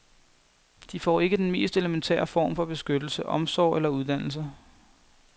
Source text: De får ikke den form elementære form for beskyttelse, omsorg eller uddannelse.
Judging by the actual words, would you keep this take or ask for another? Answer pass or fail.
fail